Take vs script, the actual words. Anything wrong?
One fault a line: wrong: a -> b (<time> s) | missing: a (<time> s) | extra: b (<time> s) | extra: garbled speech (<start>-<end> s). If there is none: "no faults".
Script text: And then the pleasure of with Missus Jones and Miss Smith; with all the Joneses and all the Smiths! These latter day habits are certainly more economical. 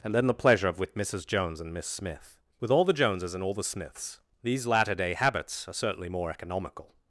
no faults